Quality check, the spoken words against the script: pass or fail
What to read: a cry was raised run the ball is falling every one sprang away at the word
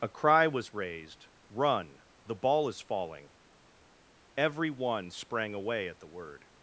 pass